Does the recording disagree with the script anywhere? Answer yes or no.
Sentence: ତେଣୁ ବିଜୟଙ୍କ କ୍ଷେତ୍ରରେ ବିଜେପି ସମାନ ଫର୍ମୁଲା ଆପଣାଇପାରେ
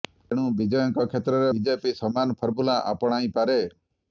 no